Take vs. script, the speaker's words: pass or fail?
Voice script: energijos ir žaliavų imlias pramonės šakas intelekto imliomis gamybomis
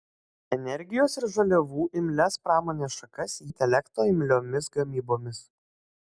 pass